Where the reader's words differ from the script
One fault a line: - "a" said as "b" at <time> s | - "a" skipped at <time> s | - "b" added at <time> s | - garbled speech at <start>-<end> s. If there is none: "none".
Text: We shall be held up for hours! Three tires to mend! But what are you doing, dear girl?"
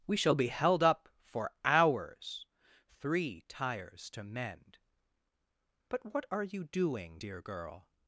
none